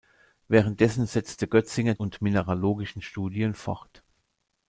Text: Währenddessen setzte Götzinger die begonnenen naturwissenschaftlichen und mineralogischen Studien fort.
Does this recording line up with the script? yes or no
no